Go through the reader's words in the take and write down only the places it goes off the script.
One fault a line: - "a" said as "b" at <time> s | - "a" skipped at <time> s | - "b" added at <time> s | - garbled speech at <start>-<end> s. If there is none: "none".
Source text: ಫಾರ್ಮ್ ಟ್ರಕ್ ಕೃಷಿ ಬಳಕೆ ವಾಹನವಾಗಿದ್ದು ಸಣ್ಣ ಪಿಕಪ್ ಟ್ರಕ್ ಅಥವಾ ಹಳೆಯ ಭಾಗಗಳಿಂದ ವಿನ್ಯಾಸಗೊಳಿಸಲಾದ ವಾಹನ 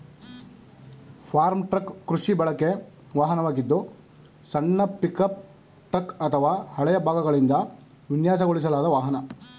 none